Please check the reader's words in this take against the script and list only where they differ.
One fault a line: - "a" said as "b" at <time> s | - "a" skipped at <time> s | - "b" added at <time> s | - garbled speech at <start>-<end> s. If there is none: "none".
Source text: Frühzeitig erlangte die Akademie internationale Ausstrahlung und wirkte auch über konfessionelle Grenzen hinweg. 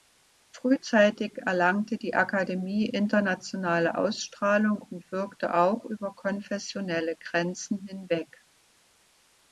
none